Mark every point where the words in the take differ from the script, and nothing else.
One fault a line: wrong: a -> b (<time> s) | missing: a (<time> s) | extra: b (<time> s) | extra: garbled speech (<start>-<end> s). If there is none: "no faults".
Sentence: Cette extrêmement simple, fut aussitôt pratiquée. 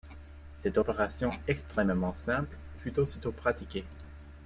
extra: opération (0.8 s)